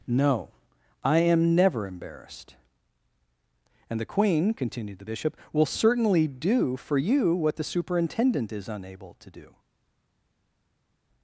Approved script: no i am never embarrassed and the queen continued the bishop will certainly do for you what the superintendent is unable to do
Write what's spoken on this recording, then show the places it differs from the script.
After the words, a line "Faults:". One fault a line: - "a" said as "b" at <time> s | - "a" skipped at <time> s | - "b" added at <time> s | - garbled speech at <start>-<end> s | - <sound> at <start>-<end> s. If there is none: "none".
no i am never embarrassed and the queen continued the bishop will certainly do for you what the superintendent is unable to do
Faults:
none